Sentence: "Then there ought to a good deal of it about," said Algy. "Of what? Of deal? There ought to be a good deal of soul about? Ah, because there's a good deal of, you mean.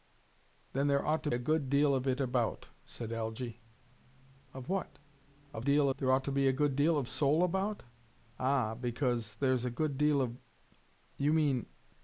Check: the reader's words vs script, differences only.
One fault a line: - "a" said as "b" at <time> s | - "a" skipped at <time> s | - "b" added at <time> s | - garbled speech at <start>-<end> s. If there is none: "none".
none